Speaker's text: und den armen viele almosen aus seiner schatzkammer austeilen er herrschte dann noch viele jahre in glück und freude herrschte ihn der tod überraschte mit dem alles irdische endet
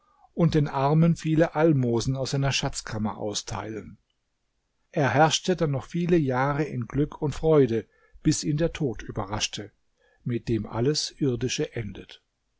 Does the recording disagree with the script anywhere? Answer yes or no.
yes